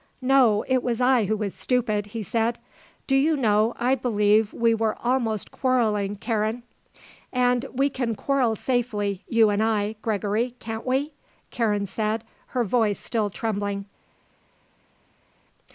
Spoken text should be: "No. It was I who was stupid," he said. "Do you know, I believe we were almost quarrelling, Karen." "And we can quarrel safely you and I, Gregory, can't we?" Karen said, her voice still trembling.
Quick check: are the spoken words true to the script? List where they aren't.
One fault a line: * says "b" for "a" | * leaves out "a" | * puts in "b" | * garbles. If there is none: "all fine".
all fine